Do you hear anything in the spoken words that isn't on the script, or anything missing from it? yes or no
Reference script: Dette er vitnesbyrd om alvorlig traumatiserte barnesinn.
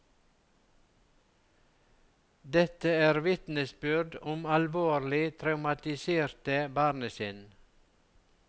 no